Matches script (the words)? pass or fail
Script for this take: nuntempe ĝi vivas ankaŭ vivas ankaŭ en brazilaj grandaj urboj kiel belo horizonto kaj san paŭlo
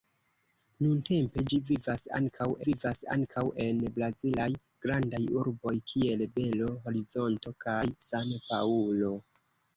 pass